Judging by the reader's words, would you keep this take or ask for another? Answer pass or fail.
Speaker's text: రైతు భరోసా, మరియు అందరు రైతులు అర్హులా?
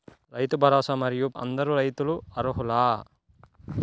pass